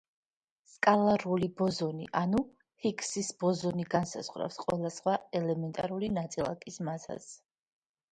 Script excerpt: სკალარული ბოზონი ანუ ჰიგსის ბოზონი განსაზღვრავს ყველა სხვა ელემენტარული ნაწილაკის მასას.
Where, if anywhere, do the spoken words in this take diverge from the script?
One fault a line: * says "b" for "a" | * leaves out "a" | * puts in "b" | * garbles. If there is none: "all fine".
all fine